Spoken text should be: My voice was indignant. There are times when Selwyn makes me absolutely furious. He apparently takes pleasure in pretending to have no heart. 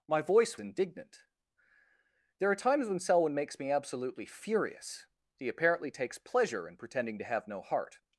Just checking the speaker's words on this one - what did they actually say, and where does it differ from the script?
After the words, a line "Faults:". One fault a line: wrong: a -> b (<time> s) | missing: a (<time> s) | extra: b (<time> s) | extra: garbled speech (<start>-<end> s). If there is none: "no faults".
My voice indignant. There are times when Selwyn makes me absolutely furious. He apparently takes pleasure in pretending to have no heart.
Faults:
missing: was (0.6 s)